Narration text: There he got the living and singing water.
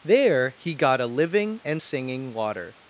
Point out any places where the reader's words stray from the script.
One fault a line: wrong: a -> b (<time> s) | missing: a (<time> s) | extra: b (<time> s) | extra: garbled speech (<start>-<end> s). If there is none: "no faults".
wrong: the -> a (1.0 s)